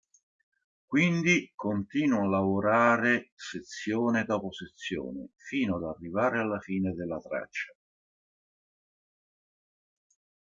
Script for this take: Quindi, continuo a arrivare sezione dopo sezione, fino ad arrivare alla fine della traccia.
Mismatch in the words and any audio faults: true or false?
true